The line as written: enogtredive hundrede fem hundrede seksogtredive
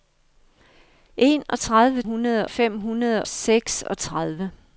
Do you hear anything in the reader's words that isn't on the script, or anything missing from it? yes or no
no